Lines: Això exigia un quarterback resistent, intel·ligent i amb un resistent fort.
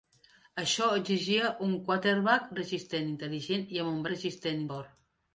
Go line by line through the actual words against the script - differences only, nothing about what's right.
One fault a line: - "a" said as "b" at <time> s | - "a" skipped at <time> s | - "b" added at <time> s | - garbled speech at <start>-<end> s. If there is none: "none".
none